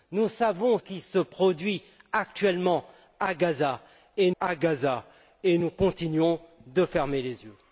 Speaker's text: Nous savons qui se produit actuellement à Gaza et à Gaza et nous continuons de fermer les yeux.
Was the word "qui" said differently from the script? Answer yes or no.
no